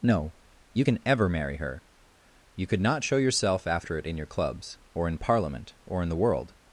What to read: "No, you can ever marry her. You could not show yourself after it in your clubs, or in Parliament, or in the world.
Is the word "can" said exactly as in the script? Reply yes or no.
yes